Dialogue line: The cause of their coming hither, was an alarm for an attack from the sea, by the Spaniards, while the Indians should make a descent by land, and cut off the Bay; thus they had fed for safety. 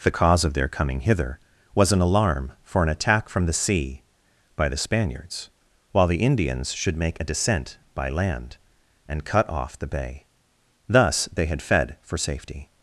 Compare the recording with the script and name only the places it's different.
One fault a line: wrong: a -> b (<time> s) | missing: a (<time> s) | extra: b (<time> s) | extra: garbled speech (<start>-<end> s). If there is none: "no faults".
no faults